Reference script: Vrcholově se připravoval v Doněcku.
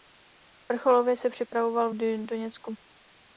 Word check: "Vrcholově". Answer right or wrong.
right